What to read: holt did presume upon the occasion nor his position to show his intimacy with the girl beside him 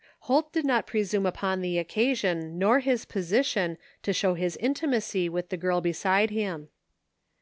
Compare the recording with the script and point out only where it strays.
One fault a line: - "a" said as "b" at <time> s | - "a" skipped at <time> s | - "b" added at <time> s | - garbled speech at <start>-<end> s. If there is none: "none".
- "not" added at 0.6 s